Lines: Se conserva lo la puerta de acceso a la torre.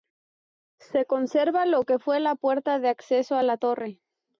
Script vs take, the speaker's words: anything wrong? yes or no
yes